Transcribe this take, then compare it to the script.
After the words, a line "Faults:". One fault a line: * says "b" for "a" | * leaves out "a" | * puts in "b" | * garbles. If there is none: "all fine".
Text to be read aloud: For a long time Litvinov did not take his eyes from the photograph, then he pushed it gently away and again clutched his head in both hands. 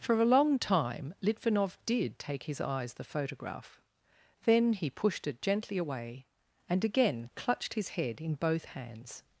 For a long time Litvinov did take his eyes the photograph, then he pushed it gently away and again clutched his head in both hands.
Faults:
* leaves out "not"
* leaves out "from"